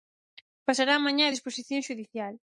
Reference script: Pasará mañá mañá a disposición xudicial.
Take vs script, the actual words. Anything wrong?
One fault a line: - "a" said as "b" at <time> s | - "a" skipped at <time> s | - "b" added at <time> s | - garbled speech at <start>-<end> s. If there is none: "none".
- "mañá" skipped at 1.3 s